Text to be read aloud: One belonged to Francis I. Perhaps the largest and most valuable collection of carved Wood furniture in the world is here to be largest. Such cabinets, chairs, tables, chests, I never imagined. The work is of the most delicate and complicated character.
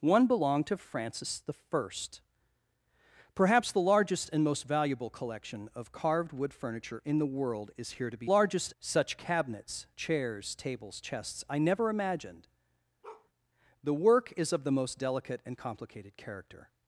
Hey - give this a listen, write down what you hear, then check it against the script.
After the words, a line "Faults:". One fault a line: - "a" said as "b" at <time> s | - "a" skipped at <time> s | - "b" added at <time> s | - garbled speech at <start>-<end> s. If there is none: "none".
One belonged to Francis I. Perhaps the largest and most valuable collection of carved Wood furniture in the world is here to be largest. Such cabinets, chairs, tables, chests, I never imagined. The work is of the most delicate and complicated character.
Faults:
none